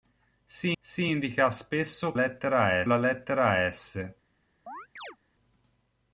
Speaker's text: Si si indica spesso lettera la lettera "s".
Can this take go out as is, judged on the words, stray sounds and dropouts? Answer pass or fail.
fail